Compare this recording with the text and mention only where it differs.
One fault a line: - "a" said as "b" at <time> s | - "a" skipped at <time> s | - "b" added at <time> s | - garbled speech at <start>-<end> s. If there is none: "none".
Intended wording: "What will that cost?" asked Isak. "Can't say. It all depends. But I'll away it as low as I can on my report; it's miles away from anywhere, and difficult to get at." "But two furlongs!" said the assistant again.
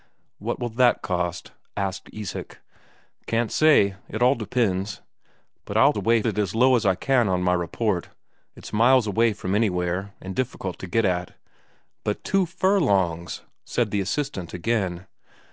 none